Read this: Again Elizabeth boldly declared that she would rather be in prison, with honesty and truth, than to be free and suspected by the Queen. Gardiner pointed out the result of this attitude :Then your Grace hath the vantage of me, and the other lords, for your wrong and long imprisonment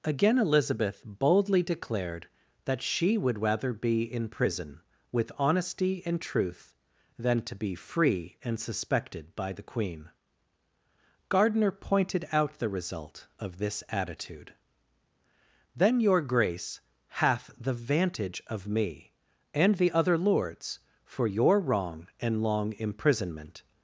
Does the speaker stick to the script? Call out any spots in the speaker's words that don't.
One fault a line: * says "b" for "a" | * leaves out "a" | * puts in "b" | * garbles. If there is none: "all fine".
all fine